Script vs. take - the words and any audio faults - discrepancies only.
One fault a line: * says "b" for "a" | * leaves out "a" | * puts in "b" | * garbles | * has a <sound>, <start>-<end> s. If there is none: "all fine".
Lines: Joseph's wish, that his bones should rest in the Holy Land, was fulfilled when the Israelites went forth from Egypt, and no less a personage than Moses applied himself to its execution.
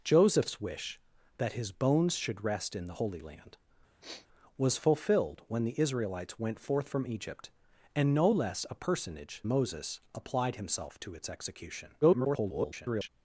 * has a sniff, 4.0-4.3 s
* leaves out "than"
* garbles